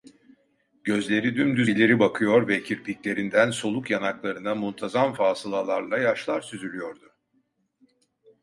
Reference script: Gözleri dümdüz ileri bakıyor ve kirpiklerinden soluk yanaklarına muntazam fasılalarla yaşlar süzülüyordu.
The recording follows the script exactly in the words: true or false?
true